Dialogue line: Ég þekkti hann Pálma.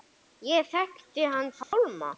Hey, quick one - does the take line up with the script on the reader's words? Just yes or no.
yes